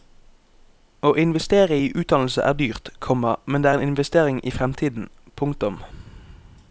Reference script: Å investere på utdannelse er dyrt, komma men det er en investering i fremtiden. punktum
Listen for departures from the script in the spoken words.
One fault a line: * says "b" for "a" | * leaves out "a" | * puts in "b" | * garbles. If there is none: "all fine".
* says "i" for "på"